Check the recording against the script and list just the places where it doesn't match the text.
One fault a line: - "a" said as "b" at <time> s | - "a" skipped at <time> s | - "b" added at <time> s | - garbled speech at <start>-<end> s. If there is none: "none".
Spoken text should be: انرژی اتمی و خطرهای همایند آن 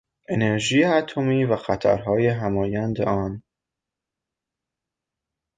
none